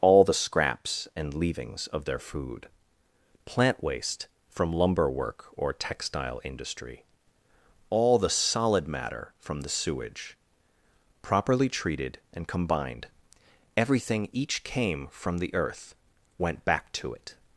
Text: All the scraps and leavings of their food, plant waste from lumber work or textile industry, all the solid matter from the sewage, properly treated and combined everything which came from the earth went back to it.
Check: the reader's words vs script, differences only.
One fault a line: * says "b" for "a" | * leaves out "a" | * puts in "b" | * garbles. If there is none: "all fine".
* says "each" for "which"